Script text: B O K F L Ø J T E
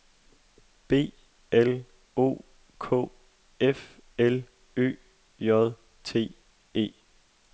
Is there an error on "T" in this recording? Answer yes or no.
no